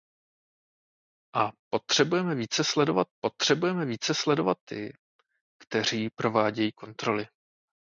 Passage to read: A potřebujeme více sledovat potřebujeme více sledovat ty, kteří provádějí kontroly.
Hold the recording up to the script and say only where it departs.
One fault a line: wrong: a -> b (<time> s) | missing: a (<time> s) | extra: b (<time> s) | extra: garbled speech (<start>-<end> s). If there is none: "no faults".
no faults